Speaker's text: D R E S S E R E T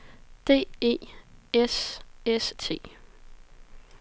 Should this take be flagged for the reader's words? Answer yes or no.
yes